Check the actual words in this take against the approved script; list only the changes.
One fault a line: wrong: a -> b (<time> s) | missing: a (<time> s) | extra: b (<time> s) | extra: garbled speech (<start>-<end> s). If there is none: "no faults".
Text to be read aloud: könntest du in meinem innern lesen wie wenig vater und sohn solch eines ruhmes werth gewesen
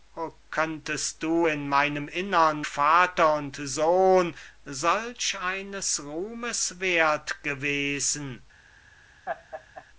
missing: lesen wie wenig (2.6 s)